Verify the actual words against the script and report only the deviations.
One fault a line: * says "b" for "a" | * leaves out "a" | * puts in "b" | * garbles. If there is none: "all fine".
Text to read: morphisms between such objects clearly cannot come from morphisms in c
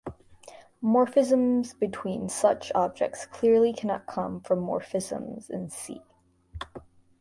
all fine